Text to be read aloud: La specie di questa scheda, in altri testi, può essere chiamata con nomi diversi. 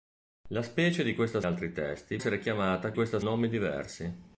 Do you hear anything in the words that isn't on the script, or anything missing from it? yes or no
yes